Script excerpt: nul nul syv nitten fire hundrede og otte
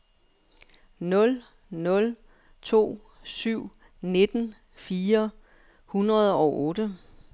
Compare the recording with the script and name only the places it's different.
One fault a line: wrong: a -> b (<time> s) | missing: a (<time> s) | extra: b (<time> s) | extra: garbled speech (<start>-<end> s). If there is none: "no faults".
extra: to (2.6 s)